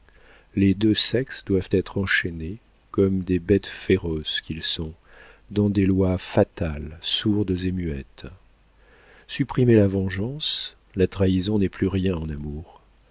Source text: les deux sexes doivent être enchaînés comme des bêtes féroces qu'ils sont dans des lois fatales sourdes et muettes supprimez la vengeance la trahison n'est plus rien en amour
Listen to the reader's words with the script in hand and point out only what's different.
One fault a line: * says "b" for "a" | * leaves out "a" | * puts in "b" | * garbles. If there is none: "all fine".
all fine